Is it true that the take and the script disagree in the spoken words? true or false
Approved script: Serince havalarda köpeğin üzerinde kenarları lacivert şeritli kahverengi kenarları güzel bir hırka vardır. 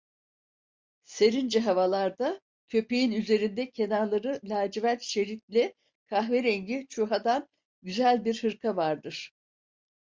true